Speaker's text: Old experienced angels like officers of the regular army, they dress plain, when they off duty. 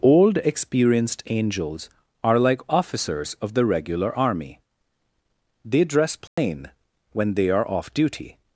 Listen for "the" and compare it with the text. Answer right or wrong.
right